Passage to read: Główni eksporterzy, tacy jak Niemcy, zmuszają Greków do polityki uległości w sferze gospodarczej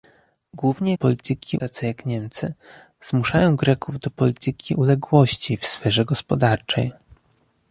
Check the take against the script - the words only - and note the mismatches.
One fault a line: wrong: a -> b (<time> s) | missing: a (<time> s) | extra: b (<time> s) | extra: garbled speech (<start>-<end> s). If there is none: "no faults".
wrong: eksporterzy -> polityki (0.9 s)